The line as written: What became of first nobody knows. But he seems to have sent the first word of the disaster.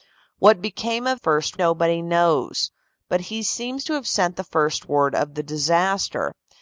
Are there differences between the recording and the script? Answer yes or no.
no